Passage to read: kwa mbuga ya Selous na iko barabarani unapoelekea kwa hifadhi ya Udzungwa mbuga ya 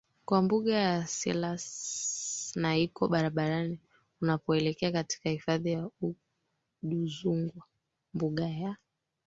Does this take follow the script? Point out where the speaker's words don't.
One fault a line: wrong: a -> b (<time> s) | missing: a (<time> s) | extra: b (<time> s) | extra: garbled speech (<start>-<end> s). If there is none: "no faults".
wrong: kwa -> katika (4.9 s)